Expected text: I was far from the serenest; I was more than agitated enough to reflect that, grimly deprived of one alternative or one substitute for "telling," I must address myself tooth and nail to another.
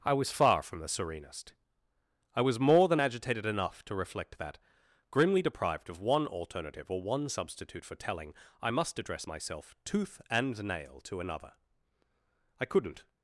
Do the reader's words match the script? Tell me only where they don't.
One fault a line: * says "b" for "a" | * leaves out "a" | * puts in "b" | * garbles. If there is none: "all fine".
* puts in "I couldn't"